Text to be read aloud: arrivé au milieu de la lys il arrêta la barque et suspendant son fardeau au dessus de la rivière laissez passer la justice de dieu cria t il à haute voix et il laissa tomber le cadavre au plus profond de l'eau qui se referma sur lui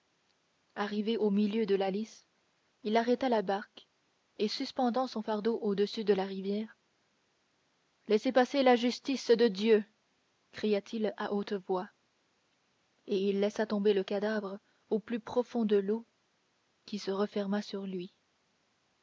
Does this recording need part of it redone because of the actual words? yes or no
no